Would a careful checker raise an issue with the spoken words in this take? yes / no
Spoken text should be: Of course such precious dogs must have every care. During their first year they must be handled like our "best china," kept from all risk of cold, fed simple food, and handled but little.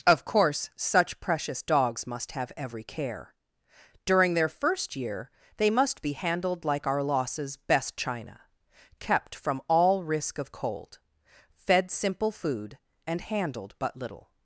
yes